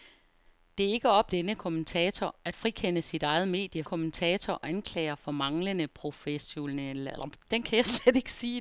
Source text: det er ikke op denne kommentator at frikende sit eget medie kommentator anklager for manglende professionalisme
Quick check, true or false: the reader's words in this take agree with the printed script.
true